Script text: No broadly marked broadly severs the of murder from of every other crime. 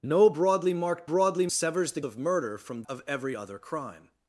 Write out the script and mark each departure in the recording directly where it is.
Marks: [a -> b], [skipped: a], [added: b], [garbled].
No broadly marked broadly severs the of murder from of every other crime.